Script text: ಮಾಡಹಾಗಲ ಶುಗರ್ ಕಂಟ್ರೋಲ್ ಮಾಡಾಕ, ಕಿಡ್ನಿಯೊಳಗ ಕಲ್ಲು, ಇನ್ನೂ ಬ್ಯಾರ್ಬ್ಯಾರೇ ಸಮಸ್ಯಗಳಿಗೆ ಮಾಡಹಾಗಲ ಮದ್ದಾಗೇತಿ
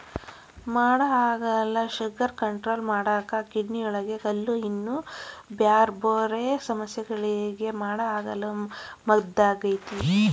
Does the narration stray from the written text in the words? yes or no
no